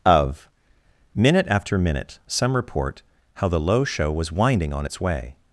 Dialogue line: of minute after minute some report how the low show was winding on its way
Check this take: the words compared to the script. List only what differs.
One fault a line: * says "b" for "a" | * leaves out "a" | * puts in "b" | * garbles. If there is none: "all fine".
all fine